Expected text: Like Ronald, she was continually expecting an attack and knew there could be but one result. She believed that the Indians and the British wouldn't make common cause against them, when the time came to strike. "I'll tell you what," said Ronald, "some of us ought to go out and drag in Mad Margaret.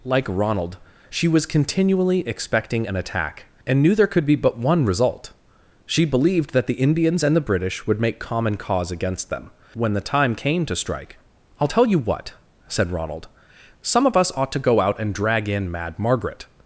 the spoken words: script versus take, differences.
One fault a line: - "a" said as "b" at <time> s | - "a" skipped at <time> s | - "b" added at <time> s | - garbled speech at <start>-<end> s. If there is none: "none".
- "wouldn't" said as "would" at 7.9 s